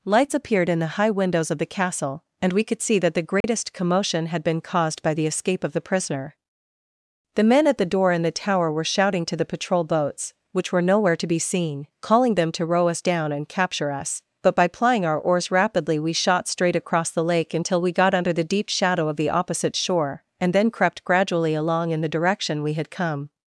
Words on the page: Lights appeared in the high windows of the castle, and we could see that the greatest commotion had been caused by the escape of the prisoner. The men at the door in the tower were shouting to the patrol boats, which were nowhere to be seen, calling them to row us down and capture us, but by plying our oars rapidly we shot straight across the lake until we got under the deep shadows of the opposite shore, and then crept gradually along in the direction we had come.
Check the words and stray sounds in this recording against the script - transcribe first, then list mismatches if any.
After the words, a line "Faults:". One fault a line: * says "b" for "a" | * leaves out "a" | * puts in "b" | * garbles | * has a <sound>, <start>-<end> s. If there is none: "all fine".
Lights appeared in the high windows of the castle, and we could see that the greatest commotion had been caused by the escape of the prisoner. The men at the door in the tower were shouting to the patrol boats, which were nowhere to be seen, calling them to row us down and capture us, but by plying our oars rapidly we shot straight across the lake until we got under the deep shadow of the opposite shore, and then crept gradually along in the direction we had come.
Faults:
* has a dropout, 3.4-3.4 s
* says "shadow" for "shadows"